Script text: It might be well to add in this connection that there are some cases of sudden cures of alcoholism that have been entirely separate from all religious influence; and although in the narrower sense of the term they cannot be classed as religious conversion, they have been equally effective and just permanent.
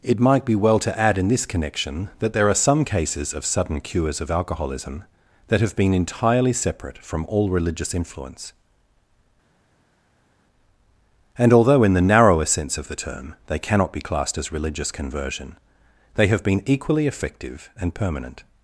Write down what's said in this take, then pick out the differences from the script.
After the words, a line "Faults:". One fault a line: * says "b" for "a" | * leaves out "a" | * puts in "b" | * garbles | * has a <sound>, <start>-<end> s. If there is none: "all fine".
It might be well to add in this connection that there are some cases of sudden cures of alcoholism that have been entirely separate from all religious influence; and although in the narrower sense of the term they cannot be classed as religious conversion, they have been equally effective and permanent.
Faults:
* leaves out "just"